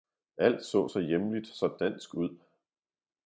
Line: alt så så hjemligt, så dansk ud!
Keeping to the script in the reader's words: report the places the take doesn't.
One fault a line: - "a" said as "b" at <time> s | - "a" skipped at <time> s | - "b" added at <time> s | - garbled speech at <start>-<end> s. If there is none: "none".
none